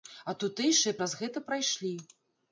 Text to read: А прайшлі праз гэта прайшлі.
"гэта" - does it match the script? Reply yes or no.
yes